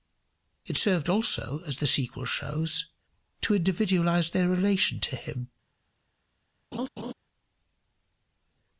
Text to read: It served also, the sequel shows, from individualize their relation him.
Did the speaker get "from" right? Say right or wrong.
wrong